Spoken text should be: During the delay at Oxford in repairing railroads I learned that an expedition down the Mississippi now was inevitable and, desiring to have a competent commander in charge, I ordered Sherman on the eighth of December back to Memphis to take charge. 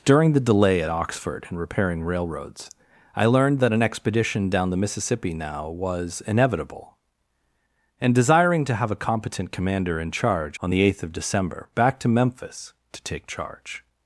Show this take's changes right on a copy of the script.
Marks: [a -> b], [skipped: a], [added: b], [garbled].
During the delay at Oxford in repairing railroads I learned that an expedition down the Mississippi now was inevitable and, desiring to have a competent commander in charge, [skipped: I ordered Sherman] on the eighth of December back to Memphis to take charge.